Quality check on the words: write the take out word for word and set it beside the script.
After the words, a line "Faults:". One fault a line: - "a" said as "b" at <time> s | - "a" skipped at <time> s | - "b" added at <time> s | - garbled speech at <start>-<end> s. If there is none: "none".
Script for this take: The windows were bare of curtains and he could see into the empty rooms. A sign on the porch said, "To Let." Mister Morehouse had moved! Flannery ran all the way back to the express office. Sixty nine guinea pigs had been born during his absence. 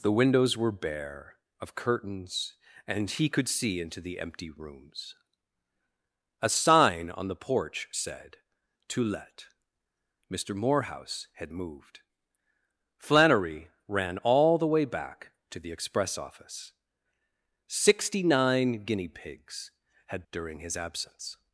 The windows were bare of curtains and he could see into the empty rooms. A sign on the porch said, "To Let." Mister Morehouse had moved! Flannery ran all the way back to the express office. Sixty nine guinea pigs had during his absence.
Faults:
- "been born" skipped at 20.2 s